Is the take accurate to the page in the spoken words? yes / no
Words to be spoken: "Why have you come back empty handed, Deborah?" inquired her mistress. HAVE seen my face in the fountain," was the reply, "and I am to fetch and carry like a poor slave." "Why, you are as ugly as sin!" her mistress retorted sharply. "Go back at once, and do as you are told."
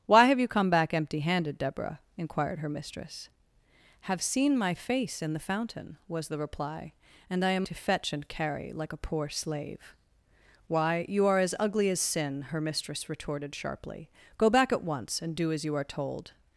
yes